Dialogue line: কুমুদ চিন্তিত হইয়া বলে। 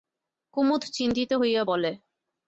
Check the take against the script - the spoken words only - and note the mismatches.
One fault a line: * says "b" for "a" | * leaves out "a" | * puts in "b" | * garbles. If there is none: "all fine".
all fine